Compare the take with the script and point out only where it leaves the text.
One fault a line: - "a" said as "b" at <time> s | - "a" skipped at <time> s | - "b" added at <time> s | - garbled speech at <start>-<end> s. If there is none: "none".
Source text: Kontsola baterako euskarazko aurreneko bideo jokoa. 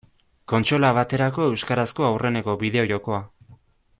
none